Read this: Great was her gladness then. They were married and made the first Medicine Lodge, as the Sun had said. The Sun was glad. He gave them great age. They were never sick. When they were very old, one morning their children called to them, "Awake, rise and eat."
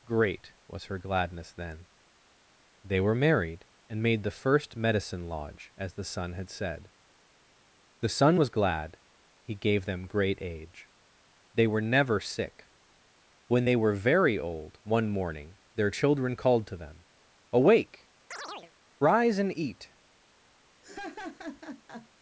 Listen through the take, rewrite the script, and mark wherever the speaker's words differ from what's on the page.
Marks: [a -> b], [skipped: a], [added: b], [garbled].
Great was her gladness then. They were married and made the first Medicine Lodge, as the Sun had said. The Sun was glad. He gave them great age. They were never sick. When they were very old, one morning their children called to them, "Awake, rise and eat."